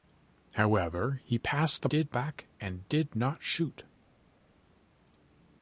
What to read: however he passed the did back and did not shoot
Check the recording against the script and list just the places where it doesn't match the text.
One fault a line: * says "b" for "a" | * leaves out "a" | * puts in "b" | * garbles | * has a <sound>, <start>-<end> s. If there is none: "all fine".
all fine